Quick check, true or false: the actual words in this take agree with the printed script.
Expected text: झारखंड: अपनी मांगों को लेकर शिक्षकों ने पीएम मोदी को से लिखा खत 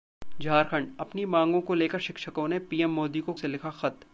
true